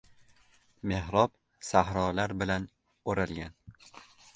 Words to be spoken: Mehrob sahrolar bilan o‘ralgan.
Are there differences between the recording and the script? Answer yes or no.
no